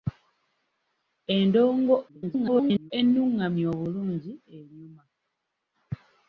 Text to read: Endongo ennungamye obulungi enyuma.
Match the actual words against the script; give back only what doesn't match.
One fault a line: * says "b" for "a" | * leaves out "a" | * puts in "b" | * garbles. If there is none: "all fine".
* garbles